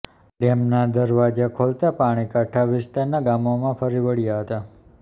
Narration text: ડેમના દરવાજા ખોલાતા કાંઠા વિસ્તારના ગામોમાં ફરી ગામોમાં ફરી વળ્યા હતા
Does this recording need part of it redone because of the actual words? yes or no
yes